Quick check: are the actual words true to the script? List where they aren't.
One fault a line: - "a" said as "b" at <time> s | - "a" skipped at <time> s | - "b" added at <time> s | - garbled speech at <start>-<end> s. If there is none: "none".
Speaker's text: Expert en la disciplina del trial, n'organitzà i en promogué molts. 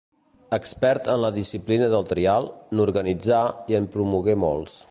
none